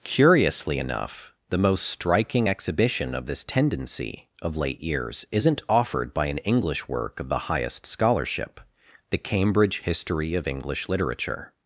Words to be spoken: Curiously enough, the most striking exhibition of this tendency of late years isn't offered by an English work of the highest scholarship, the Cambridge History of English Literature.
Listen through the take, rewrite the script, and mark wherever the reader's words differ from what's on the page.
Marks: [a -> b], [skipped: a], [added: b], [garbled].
Curiously enough, the most striking exhibition of this tendency of late years isn't offered by an English work of the highest scholarship, the Cambridge History of English Literature.